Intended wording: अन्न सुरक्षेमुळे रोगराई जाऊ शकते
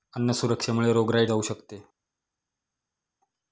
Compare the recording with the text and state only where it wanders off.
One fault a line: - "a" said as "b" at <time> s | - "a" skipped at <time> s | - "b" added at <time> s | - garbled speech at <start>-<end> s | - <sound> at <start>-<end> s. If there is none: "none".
none